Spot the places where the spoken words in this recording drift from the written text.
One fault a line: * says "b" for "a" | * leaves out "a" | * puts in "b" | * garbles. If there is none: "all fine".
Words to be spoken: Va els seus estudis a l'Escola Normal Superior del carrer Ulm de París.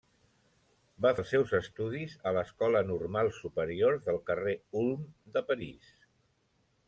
all fine